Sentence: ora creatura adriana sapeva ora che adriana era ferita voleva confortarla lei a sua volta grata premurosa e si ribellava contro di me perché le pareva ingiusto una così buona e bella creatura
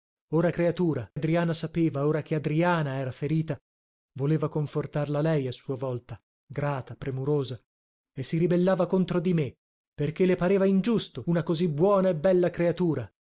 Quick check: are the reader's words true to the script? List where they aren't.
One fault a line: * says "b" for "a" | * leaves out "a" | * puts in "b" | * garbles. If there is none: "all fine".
all fine